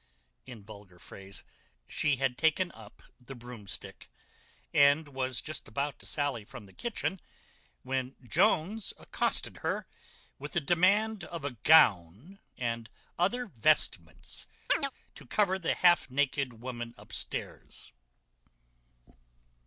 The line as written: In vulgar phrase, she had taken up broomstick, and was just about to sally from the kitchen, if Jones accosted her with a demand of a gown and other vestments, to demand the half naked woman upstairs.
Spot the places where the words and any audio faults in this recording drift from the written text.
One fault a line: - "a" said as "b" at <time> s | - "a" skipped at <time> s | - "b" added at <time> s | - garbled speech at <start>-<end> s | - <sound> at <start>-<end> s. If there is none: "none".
- "the" added at 3.2 s
- "if" said as "when" at 7.8 s
- chirp at 14.7-14.9 s
- "demand" said as "cover" at 15.2 s